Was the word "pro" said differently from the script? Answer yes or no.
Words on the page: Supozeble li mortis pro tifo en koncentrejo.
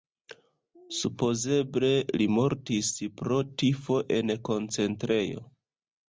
no